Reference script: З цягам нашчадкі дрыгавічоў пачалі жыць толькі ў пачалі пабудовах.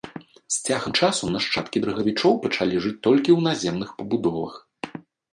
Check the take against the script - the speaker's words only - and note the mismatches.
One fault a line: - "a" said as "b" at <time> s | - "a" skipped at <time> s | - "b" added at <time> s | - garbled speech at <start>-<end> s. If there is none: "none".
- "часу" added at 1.0 s
- "пачалі" said as "наземных" at 3.5 s